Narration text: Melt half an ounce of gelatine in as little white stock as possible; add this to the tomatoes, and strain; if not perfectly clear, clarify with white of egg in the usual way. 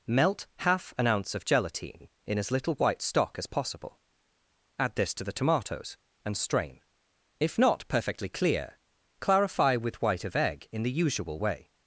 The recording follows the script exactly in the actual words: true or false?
true